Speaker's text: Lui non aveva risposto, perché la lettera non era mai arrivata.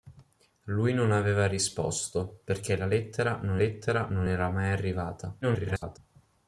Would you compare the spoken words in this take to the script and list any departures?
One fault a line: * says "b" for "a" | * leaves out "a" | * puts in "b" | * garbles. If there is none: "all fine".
* puts in "lettera non"
* garbles